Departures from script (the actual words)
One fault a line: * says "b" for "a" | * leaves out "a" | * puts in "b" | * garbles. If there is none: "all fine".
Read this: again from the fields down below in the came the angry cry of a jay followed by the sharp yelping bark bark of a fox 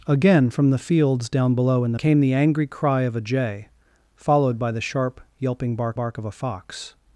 all fine